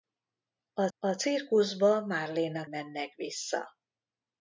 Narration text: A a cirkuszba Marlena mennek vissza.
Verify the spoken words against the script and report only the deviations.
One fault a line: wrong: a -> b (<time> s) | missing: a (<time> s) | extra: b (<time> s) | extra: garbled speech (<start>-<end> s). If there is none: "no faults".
no faults